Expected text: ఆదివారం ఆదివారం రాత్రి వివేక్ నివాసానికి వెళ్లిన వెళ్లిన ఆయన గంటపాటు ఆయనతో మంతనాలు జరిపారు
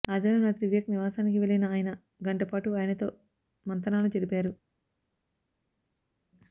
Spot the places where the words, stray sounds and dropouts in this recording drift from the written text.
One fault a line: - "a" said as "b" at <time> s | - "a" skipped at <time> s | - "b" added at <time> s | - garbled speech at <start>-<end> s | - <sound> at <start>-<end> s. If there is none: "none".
- "ఆదివారం" skipped at 0.4 s
- "వెళ్లిన" skipped at 1.6 s